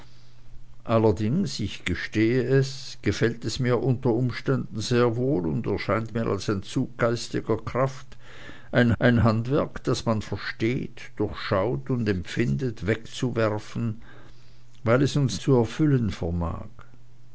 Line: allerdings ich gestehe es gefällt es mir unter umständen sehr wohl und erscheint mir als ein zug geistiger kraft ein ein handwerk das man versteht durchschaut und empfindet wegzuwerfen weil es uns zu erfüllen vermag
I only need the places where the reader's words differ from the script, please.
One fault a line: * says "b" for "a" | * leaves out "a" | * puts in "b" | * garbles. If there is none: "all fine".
all fine